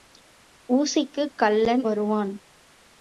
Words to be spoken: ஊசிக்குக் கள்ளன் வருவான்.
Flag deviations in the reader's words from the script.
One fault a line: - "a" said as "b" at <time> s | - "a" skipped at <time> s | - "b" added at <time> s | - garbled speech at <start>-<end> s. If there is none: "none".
none